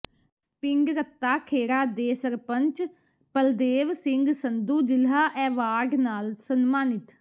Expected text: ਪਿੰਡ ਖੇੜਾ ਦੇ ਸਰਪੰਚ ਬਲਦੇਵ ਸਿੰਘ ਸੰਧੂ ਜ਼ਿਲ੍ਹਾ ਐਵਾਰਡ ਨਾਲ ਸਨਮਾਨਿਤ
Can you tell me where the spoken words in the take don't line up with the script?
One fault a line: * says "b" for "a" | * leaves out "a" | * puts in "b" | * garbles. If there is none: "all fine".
* puts in "ਰੱਤਾ"